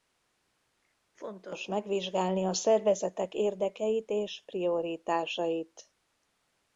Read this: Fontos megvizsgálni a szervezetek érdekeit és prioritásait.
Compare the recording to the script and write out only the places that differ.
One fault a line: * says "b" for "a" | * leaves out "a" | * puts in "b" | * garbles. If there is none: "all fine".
all fine